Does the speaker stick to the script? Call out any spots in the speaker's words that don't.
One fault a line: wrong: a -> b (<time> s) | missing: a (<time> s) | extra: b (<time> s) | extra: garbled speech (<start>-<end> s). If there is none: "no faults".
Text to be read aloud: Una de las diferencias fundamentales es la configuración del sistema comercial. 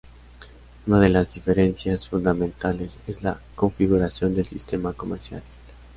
no faults